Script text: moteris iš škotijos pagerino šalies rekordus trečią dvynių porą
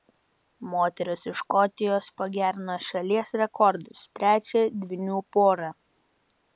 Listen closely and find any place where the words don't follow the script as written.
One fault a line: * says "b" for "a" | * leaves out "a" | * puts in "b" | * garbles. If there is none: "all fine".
all fine